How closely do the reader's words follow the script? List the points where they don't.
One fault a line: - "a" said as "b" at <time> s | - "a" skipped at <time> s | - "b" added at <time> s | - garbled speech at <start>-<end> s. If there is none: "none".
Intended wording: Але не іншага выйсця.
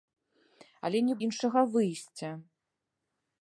none